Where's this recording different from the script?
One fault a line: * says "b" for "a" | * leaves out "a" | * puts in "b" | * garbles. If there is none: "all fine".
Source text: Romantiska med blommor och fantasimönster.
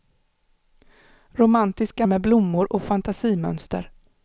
all fine